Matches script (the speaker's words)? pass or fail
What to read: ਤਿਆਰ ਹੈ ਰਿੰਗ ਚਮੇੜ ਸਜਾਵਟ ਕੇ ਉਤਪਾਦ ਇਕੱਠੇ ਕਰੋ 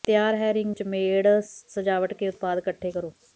pass